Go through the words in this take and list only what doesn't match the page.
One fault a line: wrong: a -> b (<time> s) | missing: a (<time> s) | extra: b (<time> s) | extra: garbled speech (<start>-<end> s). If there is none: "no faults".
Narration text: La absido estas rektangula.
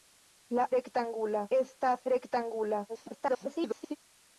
wrong: absido -> rektangula (0.8 s)
extra: garbled speech (2.9-4.0 s)